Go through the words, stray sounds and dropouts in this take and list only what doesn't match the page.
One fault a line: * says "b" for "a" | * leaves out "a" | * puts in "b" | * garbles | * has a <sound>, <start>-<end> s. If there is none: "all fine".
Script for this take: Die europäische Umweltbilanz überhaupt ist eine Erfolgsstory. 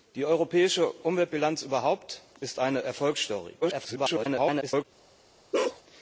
* garbles
* has a bark, 5.5-5.8 s